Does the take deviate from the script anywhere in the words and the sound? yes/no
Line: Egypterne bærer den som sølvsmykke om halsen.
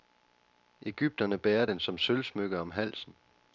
no